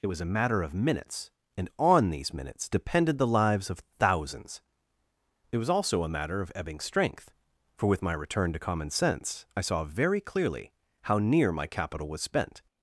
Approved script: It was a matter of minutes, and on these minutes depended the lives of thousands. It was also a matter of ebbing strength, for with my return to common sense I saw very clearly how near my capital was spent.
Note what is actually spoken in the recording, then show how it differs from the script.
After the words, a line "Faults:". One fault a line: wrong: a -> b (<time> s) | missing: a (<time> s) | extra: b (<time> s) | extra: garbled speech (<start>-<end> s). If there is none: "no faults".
It was a matter of minutes, and on these minutes depended the lives of thousands. It was also a matter of ebbing strength, for with my return to common sense I saw very clearly how near my capital was spent.
Faults:
no faults